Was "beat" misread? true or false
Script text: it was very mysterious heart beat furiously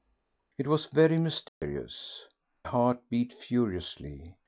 false